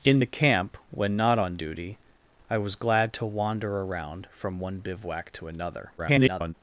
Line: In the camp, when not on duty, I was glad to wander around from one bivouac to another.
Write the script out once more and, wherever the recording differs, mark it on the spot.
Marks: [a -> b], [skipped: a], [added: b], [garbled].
In the camp, when not on duty, I was glad to wander around from one bivouac to another. [garbled]